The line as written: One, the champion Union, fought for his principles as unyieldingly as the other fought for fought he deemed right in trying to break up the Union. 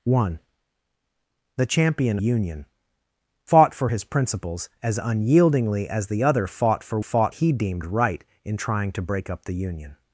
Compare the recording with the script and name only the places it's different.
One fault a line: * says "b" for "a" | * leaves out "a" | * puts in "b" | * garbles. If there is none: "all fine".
all fine